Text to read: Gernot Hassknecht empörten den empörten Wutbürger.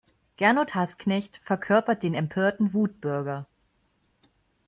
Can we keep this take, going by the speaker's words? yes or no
no